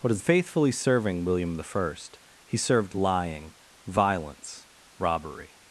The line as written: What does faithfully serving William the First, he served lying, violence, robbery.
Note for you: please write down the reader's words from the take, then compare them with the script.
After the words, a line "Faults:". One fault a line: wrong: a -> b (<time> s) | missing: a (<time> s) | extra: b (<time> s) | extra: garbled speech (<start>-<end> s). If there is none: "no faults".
What does faithfully serving William the First, he served lying, violence, robbery.
Faults:
no faults